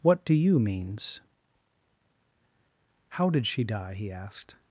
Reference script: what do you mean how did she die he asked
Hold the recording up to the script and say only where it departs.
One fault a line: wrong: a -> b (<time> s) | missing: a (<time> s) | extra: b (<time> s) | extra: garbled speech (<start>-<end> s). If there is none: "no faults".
wrong: mean -> means (0.6 s)